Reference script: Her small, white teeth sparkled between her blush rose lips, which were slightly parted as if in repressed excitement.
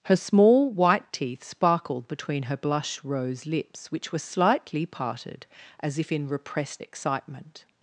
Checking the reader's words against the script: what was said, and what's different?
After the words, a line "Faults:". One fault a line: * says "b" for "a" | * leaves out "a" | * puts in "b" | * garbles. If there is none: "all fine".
Her small, white teeth sparkled between her blush rose lips, which were slightly parted as if in repressed excitement.
Faults:
all fine